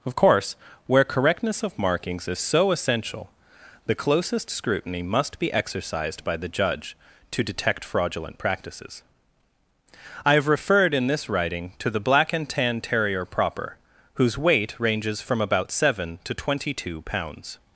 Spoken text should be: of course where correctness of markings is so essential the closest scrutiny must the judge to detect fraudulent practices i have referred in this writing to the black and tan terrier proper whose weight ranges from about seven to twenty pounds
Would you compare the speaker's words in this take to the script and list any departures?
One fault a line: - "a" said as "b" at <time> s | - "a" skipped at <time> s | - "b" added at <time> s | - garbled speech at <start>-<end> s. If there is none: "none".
- "be exercised by" added at 5.4 s
- "two" added at 16.7 s